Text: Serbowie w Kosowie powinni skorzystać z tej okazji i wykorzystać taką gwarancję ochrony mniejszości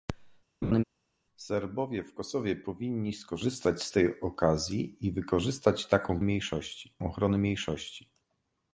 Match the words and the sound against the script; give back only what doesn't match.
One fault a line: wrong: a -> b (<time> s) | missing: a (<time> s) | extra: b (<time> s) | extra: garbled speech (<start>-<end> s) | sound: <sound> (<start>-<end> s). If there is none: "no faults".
sound: laugh (0.6-0.8 s)
wrong: gwarancję -> mniejszości (6.2 s)